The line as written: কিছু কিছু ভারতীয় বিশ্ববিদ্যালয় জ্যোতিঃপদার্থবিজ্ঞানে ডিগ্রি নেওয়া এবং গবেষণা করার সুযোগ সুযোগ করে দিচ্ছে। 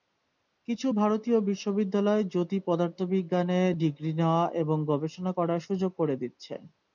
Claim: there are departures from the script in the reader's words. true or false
true